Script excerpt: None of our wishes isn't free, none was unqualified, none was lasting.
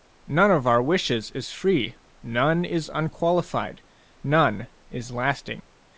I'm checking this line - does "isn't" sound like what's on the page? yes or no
no